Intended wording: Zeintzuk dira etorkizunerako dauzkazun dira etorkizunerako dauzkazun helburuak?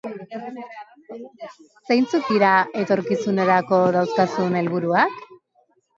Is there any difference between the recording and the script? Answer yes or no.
yes